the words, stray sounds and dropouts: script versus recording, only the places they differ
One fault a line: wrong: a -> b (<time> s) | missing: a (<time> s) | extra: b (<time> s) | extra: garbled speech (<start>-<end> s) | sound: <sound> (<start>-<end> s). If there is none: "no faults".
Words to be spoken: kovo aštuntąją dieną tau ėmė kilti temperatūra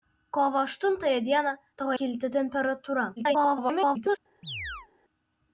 missing: ėmė (1.9 s)
extra: garbled speech (3.2-4.2 s)
sound: chirp (4.4-4.9 s)